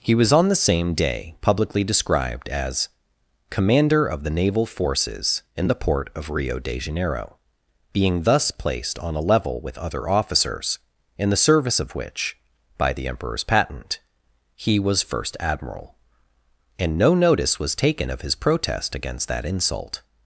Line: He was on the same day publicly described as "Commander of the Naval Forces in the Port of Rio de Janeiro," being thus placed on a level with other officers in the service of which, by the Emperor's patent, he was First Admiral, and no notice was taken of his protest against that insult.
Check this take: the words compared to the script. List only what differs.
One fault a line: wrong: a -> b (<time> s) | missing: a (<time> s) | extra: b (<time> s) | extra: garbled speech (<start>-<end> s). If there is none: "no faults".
no faults